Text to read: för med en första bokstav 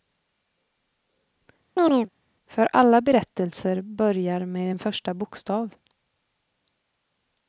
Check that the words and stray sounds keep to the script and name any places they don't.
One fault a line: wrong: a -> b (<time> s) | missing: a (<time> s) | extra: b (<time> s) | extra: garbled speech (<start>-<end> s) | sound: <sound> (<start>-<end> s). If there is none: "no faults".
sound: chirp (1.8-2.1 s)
extra: alla berättelser börjar (2.7 s)